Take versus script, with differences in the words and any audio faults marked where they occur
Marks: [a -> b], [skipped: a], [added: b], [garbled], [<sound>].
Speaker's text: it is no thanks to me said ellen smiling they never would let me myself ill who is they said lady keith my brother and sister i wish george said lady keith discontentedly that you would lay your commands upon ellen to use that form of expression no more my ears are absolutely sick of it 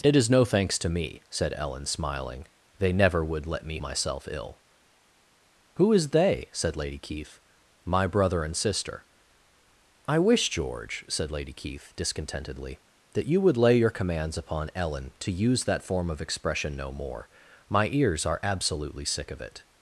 it is no thanks to me said ellen smiling they never would let me myself ill who is they said lady keith my brother and sister i wish george said lady keith discontentedly that you would lay your commands upon ellen to use that form of expression no more my ears are absolutely sick of it